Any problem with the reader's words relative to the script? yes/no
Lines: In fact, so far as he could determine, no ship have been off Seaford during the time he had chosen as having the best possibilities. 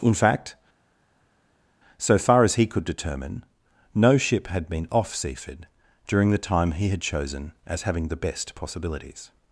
yes